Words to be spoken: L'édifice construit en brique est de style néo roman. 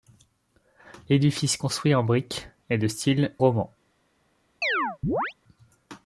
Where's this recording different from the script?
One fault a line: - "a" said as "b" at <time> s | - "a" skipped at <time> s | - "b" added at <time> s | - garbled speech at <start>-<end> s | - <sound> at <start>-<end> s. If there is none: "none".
- "néo" skipped at 3.3 s
- chirp at 4.6-5.3 s